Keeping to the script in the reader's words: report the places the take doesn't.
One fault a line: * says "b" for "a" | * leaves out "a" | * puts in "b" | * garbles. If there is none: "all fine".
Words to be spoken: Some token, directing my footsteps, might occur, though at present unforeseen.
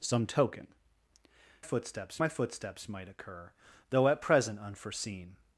* says "footsteps" for "directing"